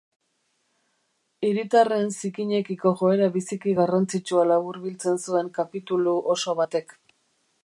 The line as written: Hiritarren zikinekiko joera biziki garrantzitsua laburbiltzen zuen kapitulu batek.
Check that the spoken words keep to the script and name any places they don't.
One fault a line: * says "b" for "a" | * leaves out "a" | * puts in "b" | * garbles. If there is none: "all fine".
* puts in "oso"